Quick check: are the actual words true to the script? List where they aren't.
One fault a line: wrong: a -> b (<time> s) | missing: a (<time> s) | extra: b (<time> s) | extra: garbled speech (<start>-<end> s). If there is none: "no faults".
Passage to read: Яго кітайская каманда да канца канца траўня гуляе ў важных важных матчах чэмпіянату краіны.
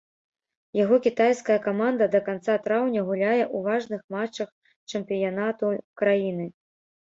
missing: канца (2.5 s)
missing: важных (4.0 s)